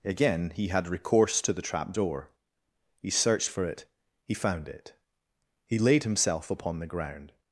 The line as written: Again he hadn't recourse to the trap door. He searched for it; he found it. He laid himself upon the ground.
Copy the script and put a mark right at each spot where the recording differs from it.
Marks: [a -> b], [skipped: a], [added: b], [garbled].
Again he [hadn't -> had] recourse to the trap door. He searched for it; he found it. He laid himself upon the ground.